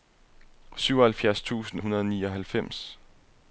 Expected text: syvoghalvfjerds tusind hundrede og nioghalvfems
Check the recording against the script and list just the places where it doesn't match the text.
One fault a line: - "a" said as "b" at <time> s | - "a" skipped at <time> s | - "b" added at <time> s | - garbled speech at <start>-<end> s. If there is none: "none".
none